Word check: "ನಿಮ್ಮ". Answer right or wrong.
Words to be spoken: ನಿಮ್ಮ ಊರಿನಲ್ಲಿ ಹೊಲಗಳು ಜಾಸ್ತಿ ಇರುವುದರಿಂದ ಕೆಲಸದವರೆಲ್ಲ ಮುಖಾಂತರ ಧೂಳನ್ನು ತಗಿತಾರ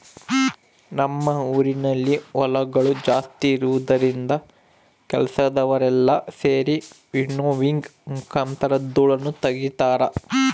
wrong